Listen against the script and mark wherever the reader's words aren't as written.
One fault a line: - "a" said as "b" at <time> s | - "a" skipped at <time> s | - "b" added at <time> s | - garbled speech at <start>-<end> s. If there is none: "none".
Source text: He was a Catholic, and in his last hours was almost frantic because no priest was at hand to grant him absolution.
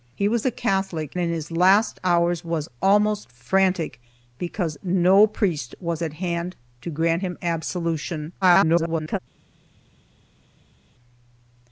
- "and" skipped at 1.1 s
- garbled speech at 8.4-9.2 s